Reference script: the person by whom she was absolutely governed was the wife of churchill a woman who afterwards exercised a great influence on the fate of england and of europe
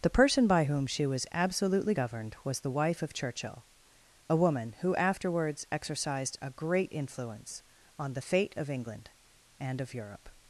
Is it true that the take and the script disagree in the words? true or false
false